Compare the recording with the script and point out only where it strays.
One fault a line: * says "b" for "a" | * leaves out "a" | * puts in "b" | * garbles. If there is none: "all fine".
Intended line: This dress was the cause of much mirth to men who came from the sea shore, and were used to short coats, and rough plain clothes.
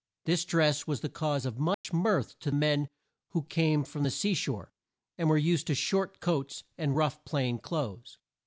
all fine